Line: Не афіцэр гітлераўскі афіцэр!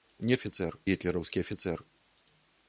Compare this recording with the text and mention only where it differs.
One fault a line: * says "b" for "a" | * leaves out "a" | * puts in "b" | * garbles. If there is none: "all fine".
all fine